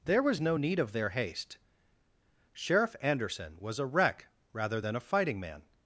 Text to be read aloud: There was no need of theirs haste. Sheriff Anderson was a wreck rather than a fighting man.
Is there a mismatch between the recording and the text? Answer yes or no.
yes